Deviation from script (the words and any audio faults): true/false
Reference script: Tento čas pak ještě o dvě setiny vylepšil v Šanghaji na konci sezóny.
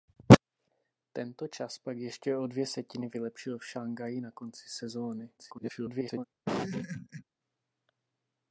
true